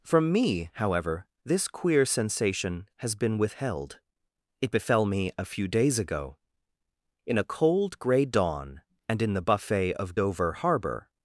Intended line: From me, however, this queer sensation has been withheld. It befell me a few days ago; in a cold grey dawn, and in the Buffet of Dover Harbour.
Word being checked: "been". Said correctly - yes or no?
yes